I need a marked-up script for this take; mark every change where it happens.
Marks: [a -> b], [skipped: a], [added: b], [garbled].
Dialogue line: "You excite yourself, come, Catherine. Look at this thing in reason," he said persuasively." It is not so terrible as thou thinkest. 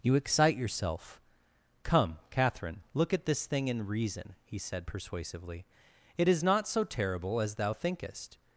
"You excite yourself, come, Catherine. Look at this thing in reason," he said persuasively." It is not so terrible as thou thinkest.